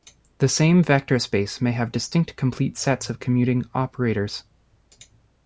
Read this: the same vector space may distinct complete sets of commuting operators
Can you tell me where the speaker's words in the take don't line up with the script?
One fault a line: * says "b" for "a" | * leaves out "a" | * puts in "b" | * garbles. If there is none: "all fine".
* puts in "have"